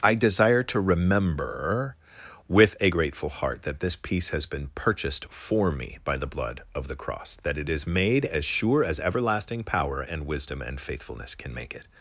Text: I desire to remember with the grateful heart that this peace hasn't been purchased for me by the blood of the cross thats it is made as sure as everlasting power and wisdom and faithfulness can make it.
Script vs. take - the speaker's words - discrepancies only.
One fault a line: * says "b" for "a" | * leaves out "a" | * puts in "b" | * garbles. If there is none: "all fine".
* says "a" for "the"
* says "has" for "hasn't"
* says "that" for "thats"